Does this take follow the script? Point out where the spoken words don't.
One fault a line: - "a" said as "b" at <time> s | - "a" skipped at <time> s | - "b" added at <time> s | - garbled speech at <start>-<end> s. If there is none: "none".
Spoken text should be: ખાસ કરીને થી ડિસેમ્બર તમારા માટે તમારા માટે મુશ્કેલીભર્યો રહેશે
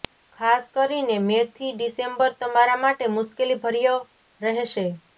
- "મે" added at 1.2 s
- "તમારા માટે" skipped at 3.1 s